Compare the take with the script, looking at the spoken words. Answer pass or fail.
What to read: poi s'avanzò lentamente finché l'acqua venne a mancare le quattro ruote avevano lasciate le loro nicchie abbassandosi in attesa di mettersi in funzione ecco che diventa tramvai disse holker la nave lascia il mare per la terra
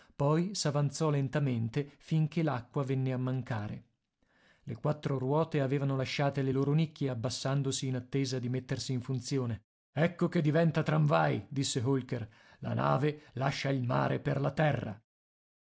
pass